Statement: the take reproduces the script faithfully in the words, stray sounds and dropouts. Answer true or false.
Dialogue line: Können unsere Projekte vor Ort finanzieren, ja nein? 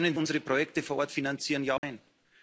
false